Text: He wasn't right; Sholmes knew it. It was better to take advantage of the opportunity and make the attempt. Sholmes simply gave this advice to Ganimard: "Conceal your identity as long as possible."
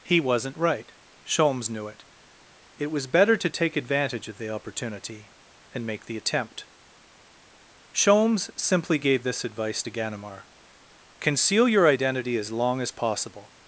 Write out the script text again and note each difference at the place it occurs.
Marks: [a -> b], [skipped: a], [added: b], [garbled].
He wasn't right; Sholmes knew it. It was better to take advantage of the opportunity and make the attempt. Sholmes simply gave this advice to Ganimard: "Conceal your identity as long as possible."